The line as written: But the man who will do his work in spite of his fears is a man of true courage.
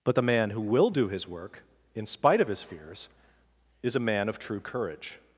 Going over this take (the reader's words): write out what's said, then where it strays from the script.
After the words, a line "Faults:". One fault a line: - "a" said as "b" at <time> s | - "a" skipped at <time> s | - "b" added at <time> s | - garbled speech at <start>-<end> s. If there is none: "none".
But the man who will do his work in spite of his fears is a man of true courage.
Faults:
none